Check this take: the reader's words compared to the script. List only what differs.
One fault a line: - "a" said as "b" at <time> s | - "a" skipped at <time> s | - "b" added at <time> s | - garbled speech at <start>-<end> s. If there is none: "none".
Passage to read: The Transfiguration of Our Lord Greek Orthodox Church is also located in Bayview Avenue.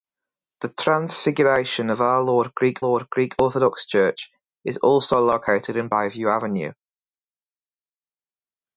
- "Lord Greek" added at 2.8 s